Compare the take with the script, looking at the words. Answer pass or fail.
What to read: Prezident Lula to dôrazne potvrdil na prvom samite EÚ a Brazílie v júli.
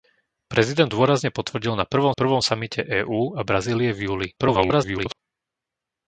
fail